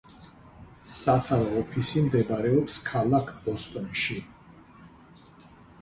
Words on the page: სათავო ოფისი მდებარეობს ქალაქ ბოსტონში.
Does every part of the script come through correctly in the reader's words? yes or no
yes